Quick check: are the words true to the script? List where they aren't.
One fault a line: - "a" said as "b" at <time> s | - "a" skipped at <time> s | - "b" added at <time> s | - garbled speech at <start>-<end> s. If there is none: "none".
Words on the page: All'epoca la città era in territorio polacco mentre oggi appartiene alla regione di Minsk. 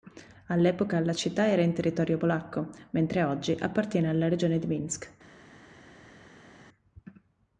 none